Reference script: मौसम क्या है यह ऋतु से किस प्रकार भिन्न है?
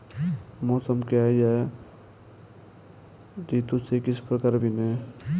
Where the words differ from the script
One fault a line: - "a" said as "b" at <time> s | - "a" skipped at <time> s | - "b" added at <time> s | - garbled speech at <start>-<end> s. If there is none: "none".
none